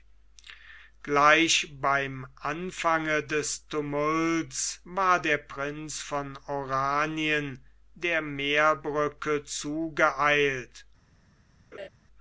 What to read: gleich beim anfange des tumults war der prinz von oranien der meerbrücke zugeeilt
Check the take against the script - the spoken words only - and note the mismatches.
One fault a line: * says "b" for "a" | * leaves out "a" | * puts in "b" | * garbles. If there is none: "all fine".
all fine